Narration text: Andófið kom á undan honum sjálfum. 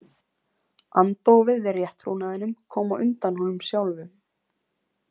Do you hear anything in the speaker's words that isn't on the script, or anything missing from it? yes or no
yes